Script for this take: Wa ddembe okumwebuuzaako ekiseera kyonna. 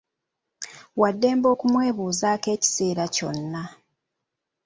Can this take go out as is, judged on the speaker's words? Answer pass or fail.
pass